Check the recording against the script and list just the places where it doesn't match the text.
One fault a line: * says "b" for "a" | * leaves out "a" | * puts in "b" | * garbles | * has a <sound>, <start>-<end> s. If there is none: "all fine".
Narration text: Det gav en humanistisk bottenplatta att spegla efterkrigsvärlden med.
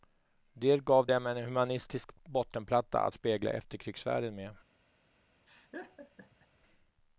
* puts in "dem"
* has a laugh, 5.5-6.5 s